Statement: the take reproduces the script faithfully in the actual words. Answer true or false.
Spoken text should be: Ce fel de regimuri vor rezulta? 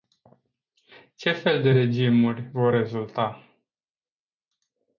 true